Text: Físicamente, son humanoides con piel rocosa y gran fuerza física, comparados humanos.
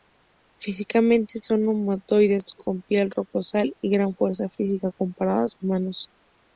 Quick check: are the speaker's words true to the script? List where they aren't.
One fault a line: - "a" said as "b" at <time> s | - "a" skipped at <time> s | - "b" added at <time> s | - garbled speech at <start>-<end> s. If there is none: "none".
none